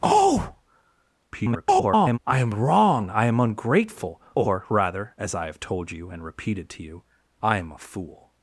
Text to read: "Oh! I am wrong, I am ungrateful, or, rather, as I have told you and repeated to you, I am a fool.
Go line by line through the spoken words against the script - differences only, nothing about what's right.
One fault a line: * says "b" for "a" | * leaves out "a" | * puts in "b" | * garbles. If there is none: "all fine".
* garbles